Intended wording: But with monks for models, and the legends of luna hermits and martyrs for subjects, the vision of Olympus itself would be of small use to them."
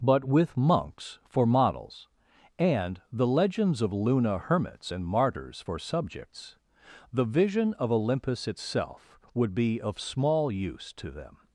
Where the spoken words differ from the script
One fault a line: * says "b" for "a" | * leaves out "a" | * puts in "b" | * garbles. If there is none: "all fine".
all fine